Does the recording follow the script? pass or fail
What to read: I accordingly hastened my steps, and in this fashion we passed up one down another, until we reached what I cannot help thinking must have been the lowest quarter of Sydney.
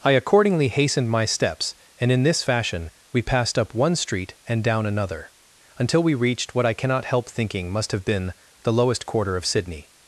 fail